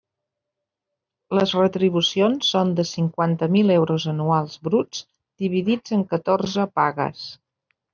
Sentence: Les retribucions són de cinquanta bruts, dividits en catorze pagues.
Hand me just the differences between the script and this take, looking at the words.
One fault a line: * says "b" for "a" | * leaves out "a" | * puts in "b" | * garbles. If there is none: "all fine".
* puts in "mil euros anuals"